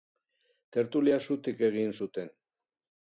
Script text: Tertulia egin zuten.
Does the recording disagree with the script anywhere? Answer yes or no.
yes